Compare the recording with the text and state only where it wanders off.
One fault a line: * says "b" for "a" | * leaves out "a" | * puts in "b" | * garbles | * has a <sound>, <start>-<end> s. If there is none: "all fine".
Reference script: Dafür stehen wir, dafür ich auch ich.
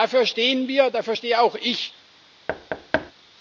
* says "stehe" for "ich"
* has a thud, 2.5-3.1 s